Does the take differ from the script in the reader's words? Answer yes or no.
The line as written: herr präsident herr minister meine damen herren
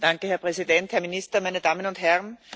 yes